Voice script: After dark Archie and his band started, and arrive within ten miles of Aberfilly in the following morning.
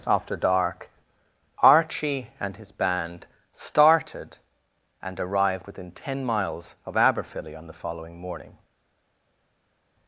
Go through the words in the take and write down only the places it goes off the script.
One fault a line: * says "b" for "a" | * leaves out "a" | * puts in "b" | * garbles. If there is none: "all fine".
* says "arrived" for "arrive"
* says "on" for "in"